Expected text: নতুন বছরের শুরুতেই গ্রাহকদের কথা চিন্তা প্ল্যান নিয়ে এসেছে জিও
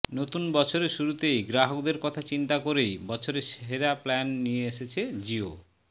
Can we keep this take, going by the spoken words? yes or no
no